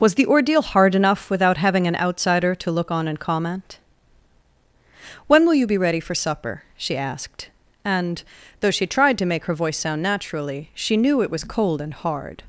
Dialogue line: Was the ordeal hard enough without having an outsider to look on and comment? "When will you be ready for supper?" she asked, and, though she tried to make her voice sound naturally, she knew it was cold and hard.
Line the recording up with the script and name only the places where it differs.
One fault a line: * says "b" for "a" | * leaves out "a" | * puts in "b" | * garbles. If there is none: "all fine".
all fine